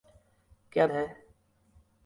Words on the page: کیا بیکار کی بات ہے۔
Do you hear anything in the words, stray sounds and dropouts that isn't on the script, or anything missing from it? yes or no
yes